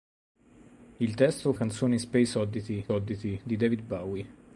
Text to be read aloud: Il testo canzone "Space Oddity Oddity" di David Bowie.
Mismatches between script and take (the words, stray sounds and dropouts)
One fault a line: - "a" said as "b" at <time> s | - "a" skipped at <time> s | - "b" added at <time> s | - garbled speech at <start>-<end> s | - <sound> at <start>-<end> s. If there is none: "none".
none